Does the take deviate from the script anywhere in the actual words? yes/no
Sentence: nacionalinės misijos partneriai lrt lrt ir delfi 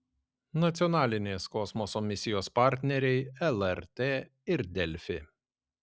yes